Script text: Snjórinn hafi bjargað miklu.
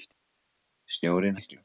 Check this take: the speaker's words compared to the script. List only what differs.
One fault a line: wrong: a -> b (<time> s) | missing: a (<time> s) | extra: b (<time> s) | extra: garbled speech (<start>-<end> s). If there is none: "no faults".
missing: hafi bjargað (1.4 s)